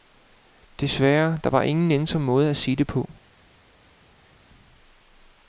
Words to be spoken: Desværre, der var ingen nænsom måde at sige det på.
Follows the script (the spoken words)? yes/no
yes